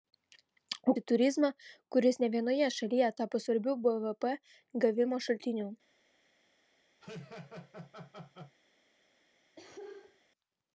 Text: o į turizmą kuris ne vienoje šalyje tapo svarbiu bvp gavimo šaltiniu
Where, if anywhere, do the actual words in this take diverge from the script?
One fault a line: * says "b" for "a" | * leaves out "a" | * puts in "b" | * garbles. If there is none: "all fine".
all fine